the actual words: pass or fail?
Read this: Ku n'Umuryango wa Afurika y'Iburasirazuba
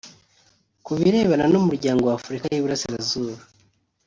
fail